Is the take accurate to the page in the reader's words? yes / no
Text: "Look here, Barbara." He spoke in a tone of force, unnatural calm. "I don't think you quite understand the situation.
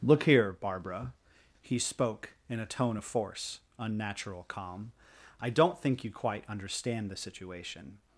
yes